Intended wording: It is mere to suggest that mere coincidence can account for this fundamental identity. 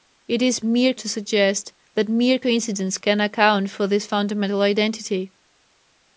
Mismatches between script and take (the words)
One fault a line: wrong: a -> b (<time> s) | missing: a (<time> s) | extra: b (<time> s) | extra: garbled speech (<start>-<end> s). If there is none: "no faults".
no faults